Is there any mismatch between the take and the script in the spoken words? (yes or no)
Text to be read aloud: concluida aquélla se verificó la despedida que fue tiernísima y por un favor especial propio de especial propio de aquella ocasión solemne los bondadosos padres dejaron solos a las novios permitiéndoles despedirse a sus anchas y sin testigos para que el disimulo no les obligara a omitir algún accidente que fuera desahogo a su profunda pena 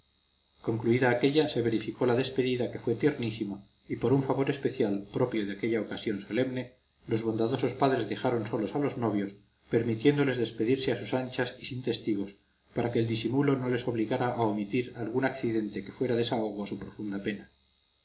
yes